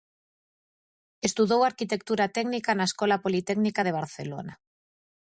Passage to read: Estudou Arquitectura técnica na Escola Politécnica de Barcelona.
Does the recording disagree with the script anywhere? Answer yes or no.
no